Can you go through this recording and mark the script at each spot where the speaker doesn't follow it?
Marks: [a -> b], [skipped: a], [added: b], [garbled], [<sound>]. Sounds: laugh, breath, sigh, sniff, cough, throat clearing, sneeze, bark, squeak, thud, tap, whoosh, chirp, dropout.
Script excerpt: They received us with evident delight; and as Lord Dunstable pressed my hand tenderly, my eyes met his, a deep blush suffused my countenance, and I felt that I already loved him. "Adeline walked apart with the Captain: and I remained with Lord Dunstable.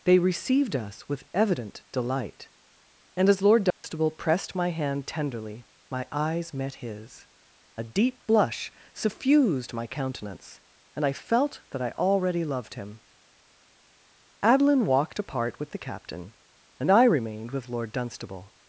They received us with evident delight; and as Lord Dunstable [dropout] pressed my hand tenderly, my eyes met his, a deep blush suffused my countenance, and I felt that I already loved him. "Adeline walked apart with the Captain: and I remained with Lord Dunstable.